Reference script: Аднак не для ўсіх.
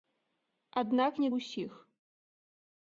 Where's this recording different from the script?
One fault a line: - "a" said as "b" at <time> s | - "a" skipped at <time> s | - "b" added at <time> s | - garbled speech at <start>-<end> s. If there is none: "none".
- "для" skipped at 1.3 s